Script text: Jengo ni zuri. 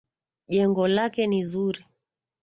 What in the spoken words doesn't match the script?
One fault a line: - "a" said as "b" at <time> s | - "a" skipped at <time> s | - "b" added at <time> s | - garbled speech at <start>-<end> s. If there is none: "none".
- "lake" added at 0.9 s